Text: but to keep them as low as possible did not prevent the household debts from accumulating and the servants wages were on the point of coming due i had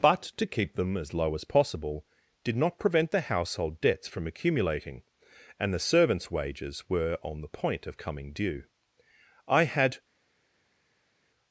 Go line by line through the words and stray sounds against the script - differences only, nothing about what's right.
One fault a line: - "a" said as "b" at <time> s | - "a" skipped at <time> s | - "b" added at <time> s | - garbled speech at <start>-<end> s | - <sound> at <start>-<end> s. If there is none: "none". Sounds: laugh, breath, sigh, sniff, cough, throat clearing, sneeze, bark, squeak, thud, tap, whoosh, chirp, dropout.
none